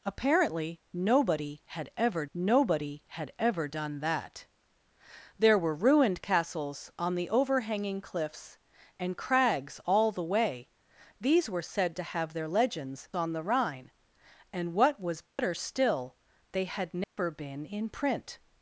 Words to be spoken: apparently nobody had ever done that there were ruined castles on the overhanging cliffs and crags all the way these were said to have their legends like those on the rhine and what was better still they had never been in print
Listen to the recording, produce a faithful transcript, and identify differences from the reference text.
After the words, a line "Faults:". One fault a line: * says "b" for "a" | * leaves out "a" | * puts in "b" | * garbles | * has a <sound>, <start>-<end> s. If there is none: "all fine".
apparently nobody had ever nobody had ever done that there were ruined castles on the overhanging cliffs and crags all the way these were said to have their legends on the rhine and what was better still they had never been in print
Faults:
* puts in "nobody had ever"
* leaves out "like those"
* has a dropout, 15.3-15.4 s
* has a dropout, 17.0-17.2 s